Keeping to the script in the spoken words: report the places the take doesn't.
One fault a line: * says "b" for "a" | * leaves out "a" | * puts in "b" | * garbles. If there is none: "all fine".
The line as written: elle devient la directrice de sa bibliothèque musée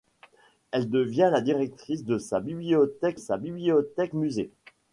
* puts in "sa bibliothèque"